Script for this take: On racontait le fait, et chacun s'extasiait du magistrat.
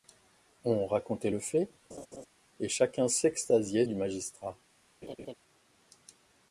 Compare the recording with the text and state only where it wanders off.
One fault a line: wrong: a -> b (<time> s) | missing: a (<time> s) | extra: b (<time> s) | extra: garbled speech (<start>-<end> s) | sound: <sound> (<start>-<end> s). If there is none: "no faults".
sound: laugh (1.9-2.3 s)
sound: laugh (5.0-5.3 s)